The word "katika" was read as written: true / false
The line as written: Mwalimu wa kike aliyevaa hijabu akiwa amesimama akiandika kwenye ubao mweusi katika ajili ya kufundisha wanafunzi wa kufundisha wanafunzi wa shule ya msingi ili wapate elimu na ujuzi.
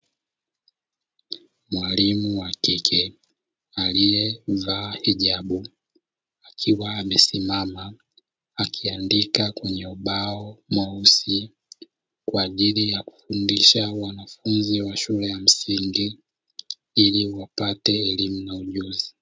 false